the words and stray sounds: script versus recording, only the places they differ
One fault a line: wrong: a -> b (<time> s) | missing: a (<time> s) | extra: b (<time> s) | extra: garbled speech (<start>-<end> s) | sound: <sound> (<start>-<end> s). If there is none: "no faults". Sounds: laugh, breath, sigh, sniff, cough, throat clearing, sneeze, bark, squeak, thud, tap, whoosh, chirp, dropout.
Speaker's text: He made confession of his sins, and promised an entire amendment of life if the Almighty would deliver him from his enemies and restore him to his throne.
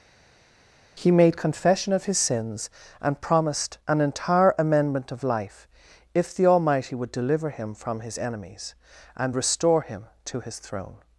no faults